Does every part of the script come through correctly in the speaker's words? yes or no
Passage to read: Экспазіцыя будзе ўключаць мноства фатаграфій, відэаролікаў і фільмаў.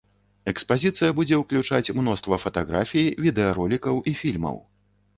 yes